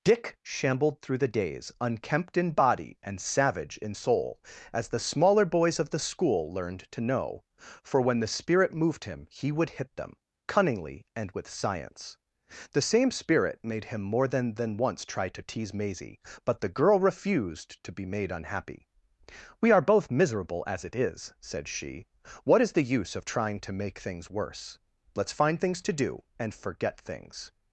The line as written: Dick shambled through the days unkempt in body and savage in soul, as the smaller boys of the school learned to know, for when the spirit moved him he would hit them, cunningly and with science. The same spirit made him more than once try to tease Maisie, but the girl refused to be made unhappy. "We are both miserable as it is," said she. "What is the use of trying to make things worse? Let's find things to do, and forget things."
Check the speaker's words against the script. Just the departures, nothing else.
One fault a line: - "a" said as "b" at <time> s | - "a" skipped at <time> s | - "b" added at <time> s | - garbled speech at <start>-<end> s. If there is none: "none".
- "than" added at 14.5 s